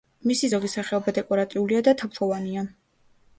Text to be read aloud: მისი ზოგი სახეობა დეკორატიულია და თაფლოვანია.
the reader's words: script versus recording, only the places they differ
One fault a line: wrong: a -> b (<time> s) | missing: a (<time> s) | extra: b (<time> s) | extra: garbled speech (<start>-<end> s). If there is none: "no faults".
no faults